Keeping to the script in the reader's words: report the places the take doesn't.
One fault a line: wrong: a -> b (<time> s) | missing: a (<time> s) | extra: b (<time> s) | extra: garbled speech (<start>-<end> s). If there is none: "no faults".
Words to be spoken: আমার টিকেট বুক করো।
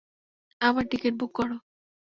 no faults